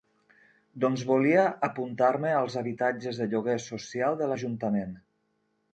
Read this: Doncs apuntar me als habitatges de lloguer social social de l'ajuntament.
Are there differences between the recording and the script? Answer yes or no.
yes